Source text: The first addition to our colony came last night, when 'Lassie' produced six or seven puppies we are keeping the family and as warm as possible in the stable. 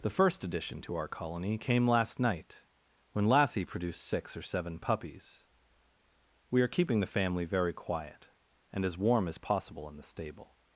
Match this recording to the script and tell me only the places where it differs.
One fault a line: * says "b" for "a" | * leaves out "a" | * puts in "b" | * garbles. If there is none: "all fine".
* puts in "very quiet"